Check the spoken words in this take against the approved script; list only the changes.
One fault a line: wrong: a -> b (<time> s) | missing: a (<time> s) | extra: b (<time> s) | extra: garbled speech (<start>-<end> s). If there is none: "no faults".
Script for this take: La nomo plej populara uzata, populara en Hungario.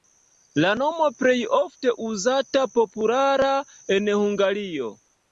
wrong: populara -> ofte (1.6 s)